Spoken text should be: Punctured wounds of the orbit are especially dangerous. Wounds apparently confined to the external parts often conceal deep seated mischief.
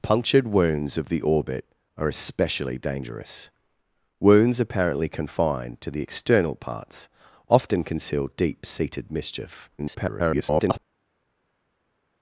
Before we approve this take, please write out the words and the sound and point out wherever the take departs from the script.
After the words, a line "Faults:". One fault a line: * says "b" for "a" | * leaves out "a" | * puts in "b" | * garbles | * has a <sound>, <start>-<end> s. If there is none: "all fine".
Punctured wounds of the orbit are especially dangerous. Wounds apparently confined to the external parts often conceal deep seated mischief. [garbled]
Faults:
* garbles